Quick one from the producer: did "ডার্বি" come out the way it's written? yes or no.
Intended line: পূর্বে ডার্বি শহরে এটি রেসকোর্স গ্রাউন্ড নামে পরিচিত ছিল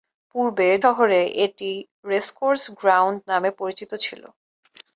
no